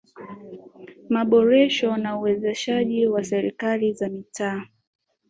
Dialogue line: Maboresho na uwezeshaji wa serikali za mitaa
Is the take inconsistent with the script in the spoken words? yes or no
no